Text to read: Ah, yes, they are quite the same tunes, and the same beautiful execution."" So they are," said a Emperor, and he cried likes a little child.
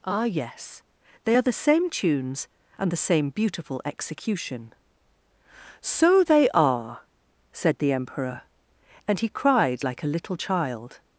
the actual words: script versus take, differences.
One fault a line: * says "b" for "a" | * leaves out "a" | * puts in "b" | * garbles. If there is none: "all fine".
* leaves out "quite"
* says "the" for "a"
* says "like" for "likes"